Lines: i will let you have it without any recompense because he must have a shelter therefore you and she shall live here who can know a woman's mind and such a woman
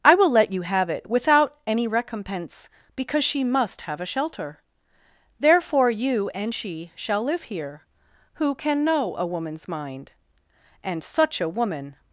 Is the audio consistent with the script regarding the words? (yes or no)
no